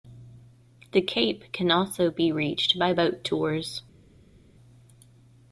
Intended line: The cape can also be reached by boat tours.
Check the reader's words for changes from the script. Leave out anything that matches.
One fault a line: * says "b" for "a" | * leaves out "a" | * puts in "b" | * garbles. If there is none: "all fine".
all fine